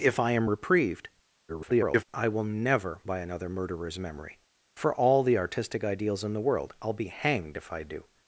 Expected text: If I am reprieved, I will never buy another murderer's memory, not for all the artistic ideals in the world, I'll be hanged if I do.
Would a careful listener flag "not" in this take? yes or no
yes